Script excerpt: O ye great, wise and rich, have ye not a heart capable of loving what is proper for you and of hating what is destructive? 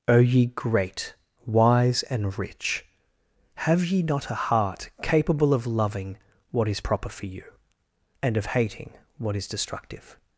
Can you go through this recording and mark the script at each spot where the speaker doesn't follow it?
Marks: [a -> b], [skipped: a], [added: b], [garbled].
O ye great, wise and rich, have ye not a heart capable of loving what is proper for you and of hating what is destructive?